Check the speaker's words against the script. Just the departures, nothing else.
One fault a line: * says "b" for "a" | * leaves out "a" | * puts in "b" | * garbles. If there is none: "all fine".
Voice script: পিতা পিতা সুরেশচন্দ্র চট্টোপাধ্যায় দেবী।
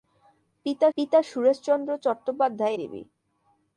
all fine